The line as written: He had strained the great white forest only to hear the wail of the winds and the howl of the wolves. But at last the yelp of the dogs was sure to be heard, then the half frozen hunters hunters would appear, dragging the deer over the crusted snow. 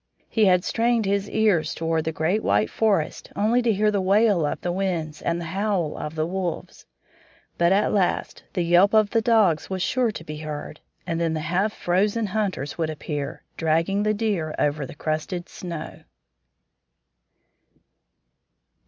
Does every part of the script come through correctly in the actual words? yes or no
no